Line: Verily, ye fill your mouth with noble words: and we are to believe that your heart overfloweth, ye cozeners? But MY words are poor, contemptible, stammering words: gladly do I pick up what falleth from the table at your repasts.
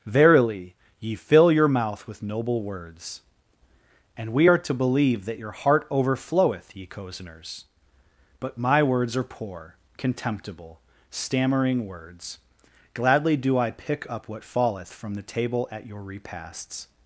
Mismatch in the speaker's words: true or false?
false